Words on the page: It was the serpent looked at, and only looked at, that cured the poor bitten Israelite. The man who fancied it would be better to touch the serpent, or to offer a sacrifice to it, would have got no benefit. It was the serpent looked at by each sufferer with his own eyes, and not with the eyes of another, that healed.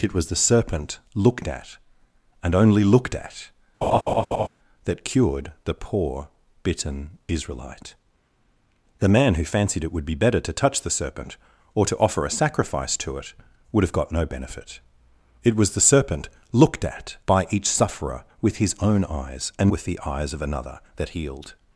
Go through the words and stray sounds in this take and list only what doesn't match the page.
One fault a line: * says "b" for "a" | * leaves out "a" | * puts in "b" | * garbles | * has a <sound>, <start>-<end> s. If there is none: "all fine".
* has a laugh, 3.8-4.5 s
* leaves out "not"